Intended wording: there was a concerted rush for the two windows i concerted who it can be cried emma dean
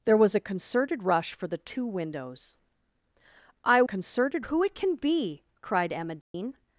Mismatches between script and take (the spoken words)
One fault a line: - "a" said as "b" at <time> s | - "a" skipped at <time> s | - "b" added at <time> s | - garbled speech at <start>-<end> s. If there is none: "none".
none